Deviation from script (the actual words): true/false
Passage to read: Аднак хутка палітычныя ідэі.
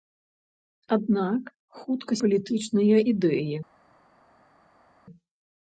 false